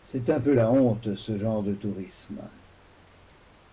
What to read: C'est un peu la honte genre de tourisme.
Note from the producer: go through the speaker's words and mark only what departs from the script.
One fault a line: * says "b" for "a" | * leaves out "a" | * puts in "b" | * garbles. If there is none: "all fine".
* puts in "ce"